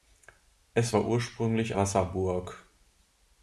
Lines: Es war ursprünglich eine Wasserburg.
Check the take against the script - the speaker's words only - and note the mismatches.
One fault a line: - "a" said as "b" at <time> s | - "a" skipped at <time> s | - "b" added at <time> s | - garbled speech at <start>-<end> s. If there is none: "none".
- "eine" skipped at 1.8 s